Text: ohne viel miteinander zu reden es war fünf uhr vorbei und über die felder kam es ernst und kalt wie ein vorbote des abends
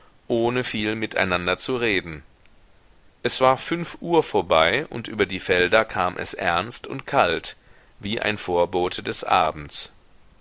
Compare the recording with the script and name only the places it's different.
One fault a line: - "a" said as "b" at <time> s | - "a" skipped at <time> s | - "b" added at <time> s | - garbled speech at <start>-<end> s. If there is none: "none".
none